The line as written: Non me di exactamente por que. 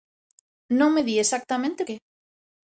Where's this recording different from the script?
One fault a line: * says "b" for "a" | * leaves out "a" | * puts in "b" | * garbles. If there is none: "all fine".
* leaves out "por"